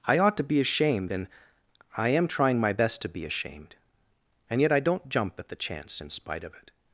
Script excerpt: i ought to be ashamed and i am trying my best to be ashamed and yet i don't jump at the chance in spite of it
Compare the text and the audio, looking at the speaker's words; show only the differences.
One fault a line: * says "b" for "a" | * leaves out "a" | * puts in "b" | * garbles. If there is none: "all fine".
all fine